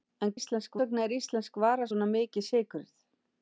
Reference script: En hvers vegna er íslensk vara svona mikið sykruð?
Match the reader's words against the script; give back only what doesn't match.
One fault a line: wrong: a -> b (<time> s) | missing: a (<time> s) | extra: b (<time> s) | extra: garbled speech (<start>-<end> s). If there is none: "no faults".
wrong: hvers -> íslensk (0.4 s)